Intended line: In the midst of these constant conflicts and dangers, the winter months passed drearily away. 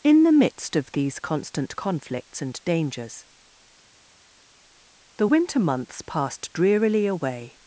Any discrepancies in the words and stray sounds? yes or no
no